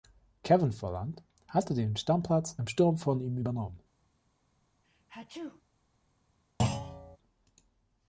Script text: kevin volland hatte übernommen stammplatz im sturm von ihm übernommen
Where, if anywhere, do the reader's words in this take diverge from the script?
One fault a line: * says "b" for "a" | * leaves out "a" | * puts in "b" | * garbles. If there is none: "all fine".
* says "den" for "übernommen"